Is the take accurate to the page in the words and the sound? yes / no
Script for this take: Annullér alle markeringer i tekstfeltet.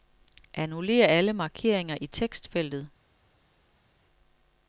yes